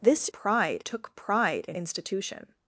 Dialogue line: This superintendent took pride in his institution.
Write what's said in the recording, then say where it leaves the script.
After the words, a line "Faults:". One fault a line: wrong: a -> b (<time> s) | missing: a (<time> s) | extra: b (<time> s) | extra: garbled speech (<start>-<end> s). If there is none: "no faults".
This pride took pride in institution.
Faults:
wrong: superintendent -> pride (0.3 s)
missing: his (1.8 s)